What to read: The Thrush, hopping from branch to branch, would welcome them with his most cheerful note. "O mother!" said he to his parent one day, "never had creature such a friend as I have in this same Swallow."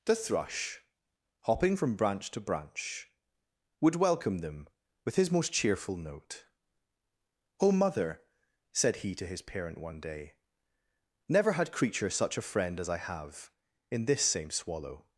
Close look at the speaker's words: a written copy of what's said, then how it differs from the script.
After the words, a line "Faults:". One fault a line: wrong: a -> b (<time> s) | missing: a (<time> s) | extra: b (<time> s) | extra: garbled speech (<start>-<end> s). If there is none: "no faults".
The Thrush, hopping from branch to branch, would welcome them with his most cheerful note. "O mother!" said he to his parent one day, "never had creature such a friend as I have in this same Swallow."
Faults:
no faults